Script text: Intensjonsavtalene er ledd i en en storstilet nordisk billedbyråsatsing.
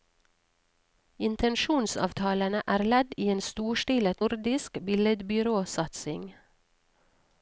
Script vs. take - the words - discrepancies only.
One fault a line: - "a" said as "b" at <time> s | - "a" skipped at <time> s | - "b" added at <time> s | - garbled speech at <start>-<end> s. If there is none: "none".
- "en" skipped at 3.4 s